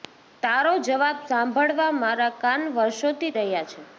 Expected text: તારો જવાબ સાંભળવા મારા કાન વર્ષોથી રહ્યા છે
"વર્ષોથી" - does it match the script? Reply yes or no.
yes